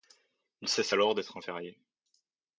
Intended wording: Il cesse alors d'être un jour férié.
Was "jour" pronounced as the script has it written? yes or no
no